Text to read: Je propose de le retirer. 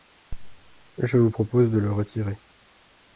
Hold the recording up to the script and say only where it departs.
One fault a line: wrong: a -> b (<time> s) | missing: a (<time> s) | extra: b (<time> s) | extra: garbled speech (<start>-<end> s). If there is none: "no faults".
extra: vous (1.2 s)